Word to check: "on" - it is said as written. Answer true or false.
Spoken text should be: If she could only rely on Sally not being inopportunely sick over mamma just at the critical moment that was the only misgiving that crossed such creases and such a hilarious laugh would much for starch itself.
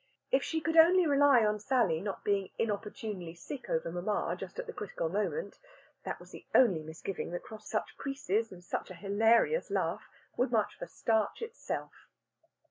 true